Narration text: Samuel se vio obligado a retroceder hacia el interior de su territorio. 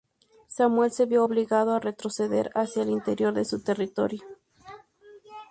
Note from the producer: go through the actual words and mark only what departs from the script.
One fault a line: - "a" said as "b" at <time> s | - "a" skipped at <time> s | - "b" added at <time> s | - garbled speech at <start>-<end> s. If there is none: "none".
none